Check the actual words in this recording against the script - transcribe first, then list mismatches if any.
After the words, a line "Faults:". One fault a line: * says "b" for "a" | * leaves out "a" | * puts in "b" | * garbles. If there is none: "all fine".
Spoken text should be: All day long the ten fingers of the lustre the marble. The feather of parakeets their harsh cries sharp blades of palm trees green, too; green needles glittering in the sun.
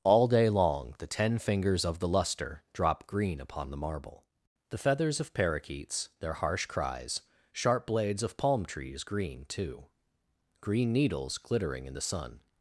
All day long the ten fingers of the lustre drop green upon the marble. The feathers of parakeets their harsh cries sharp blades of palm trees green, too; green needles glittering in the sun.
Faults:
* puts in "drop green upon"
* says "feathers" for "feather"